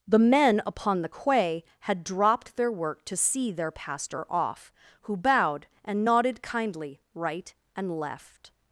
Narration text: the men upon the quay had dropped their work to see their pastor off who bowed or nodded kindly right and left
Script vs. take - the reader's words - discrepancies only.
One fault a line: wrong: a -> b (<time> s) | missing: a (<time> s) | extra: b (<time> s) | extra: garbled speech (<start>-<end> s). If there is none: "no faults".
wrong: or -> and (5.8 s)